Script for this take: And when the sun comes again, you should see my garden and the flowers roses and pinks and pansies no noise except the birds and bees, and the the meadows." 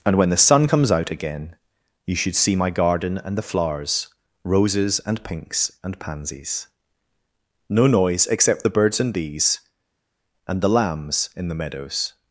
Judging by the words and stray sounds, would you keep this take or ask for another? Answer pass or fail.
fail